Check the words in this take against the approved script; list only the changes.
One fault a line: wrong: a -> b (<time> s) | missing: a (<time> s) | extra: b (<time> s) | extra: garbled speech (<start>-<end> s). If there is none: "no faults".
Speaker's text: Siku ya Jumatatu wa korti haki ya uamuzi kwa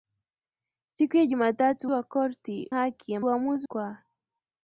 no faults